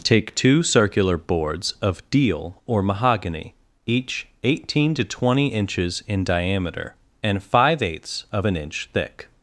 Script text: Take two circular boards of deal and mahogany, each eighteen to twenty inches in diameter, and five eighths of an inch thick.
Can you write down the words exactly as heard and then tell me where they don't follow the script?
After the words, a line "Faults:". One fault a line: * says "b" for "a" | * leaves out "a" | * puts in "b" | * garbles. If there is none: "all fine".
Take two circular boards of deal or mahogany, each eighteen to twenty inches in diameter, and five eighths of an inch thick.
Faults:
* says "or" for "and"